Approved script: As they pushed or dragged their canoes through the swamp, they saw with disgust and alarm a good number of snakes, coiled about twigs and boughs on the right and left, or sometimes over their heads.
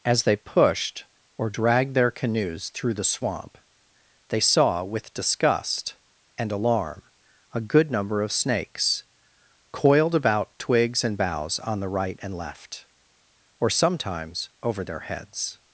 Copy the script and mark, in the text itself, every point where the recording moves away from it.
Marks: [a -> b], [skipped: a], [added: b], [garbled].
As they pushed or dragged their canoes through the swamp, they saw with disgust and alarm a good number of snakes, coiled about twigs and boughs on the right and left, or sometimes over their heads.